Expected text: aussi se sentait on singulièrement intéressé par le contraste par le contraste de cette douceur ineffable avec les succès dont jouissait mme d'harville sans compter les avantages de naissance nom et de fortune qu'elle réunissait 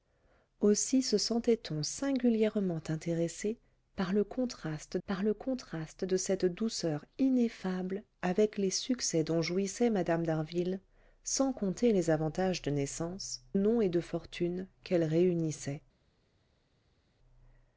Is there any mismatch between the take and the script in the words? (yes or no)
no